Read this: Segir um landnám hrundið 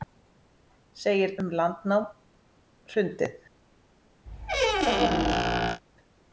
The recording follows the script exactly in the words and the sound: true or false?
false